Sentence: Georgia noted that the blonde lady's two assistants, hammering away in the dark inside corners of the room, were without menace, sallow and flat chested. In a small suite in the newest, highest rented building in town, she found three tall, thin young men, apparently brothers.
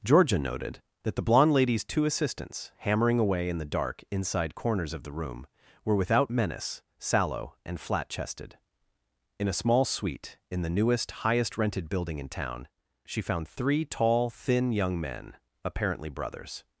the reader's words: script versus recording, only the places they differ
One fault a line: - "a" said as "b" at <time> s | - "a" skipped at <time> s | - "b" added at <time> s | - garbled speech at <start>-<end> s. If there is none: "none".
none